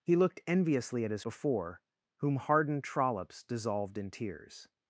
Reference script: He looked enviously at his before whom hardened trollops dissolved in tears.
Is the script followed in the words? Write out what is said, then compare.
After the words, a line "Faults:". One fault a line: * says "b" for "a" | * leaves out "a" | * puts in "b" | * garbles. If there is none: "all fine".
He looked enviously at his before whom hardened trollops dissolved in tears.
Faults:
all fine